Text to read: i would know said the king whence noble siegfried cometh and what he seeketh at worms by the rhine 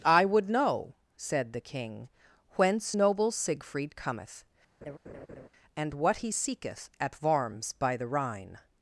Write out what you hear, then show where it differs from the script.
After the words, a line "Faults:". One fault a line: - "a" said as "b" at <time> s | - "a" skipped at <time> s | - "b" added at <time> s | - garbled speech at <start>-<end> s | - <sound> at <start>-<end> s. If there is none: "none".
i would know said the king whence noble siegfried cometh and what he seeketh at worms by the rhine
Faults:
- laugh at 4.8-5.5 s